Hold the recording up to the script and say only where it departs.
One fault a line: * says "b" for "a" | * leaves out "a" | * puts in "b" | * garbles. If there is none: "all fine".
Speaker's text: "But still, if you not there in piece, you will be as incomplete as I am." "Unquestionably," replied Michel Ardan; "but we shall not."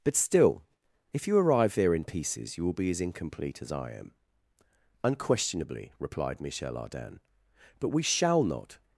* says "arrive" for "not"
* says "pieces" for "piece"